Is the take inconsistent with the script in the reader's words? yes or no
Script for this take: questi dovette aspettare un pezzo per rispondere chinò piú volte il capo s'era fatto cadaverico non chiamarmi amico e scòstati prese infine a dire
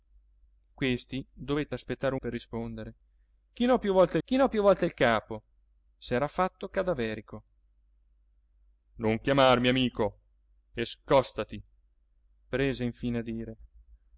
yes